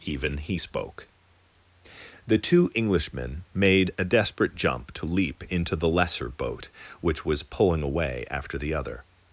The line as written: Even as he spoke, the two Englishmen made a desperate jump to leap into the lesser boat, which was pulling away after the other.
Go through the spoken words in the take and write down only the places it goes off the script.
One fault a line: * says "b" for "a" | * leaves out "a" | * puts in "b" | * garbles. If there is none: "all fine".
* leaves out "as"